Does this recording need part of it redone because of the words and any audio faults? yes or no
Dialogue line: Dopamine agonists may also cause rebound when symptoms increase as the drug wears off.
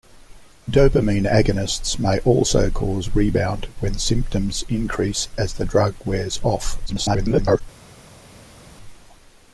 yes